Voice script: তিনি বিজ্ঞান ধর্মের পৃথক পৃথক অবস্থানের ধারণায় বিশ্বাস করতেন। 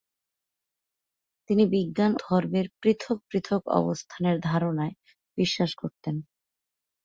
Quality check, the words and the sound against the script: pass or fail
pass